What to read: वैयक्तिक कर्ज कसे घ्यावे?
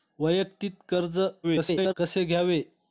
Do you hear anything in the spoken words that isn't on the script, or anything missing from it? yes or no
yes